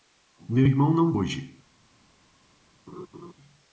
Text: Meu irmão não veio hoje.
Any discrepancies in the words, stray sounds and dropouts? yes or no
yes